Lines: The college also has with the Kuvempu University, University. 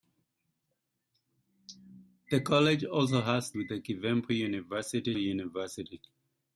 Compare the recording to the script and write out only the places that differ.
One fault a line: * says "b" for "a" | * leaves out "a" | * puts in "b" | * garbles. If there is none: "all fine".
all fine